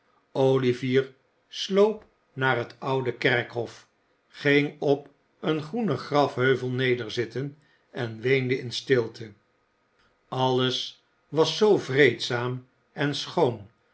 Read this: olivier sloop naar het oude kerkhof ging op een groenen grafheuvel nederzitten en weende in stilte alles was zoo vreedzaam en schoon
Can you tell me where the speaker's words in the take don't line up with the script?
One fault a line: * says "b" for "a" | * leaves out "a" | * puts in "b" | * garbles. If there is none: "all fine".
all fine